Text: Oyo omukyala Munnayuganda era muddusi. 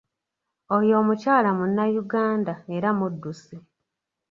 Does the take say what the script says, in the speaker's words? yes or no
yes